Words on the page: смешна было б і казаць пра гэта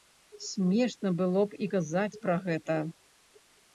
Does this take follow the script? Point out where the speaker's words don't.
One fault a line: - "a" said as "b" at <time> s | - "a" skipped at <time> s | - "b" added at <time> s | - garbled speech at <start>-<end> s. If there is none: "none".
none